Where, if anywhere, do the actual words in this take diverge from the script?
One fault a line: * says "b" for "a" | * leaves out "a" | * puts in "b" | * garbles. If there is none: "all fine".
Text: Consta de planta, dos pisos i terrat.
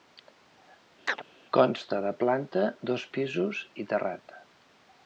all fine